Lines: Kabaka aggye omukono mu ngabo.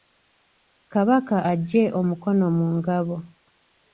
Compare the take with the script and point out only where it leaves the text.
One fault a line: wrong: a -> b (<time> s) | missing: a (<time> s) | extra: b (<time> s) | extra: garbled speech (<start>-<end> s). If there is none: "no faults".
no faults